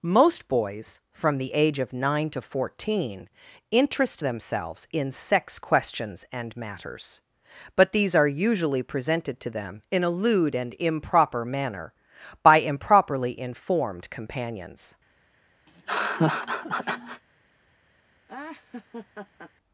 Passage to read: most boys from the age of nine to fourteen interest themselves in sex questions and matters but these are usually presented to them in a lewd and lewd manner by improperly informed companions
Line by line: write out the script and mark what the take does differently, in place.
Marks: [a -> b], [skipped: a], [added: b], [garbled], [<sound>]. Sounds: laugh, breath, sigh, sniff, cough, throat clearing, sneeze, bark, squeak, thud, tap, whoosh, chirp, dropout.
most boys from the age of nine to fourteen interest themselves in sex questions and matters but these are usually presented to them in a lewd and [lewd -> improper] manner by improperly informed companions [laugh] [laugh]